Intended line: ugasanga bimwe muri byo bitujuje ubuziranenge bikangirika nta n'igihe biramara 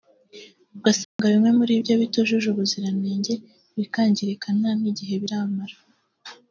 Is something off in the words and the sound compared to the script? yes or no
yes